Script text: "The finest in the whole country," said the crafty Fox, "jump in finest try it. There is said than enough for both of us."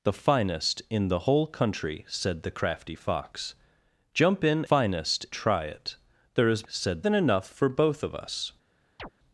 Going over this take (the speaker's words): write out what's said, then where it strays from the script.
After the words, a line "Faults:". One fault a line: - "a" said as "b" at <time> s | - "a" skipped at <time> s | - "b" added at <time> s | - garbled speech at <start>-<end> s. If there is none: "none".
"The finest in the whole country," said the crafty Fox, "jump in finest try it. There is said than enough for both of us."
Faults:
none